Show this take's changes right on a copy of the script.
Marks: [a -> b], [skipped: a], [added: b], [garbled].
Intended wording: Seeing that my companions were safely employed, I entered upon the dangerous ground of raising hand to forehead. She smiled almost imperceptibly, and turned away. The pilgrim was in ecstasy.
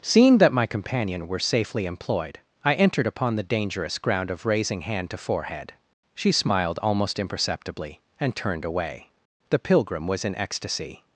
Seeing that my [companions -> companion] were safely employed, I entered upon the dangerous ground of raising hand to forehead. She smiled almost imperceptibly, and turned away. The pilgrim was in ecstasy.